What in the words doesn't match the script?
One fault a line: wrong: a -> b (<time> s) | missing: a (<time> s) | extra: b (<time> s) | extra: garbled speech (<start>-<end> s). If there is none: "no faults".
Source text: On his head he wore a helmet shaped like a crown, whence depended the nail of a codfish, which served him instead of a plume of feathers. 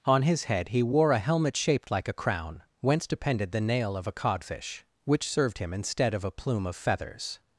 no faults